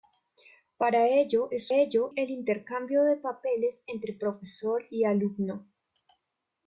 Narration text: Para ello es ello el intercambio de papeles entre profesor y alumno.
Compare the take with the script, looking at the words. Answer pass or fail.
pass